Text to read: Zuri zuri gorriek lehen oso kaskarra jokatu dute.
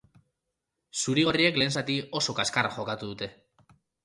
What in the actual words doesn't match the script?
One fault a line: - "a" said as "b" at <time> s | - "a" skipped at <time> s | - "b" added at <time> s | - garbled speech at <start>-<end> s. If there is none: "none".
- "zuri" skipped at 1.2 s
- "zati" added at 1.8 s